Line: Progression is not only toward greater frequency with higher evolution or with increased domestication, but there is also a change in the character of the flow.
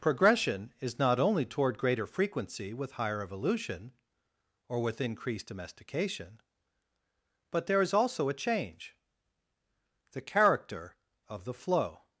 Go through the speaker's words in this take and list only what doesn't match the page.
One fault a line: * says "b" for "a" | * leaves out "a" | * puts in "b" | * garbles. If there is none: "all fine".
* leaves out "in"